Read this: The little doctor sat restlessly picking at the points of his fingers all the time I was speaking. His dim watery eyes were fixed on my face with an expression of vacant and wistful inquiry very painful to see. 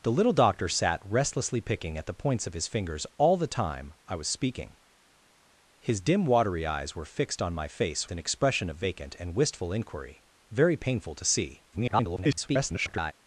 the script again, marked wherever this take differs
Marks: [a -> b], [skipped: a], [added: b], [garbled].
The little doctor sat restlessly picking at the points of his fingers all the time I was speaking. His dim watery eyes were fixed on my face [skipped: with] an expression of vacant and wistful inquiry very painful to see. [garbled]